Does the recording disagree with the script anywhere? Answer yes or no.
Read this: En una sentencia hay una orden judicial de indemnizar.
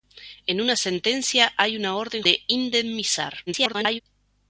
yes